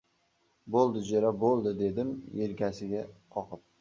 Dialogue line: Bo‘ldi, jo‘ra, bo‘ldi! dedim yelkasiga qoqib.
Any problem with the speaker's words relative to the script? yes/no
no